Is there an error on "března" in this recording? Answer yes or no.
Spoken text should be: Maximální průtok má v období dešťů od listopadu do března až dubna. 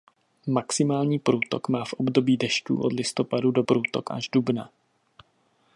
yes